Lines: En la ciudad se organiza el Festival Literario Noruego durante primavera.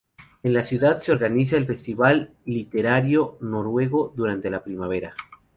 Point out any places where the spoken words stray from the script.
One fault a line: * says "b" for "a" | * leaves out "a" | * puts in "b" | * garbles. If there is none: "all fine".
* puts in "la"